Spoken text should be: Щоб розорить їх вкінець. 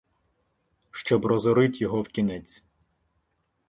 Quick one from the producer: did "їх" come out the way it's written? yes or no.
no